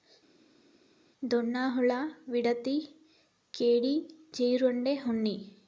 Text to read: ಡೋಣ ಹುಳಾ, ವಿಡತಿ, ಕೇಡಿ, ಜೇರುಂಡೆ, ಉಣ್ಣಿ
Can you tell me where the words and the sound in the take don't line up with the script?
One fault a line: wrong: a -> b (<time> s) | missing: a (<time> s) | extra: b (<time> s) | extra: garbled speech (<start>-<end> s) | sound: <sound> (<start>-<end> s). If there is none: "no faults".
no faults